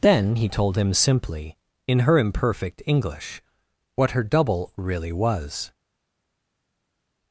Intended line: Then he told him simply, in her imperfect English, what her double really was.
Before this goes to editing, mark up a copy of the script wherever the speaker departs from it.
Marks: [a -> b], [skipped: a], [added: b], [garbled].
Then he told him simply, in her imperfect English, what her double really was.